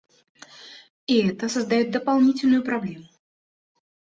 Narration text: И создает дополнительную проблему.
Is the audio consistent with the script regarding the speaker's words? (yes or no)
no